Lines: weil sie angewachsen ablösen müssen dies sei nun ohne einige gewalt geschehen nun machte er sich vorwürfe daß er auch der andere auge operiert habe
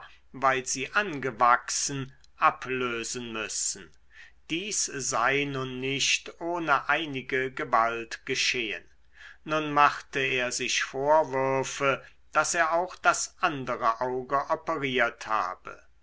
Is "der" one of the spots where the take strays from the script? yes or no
yes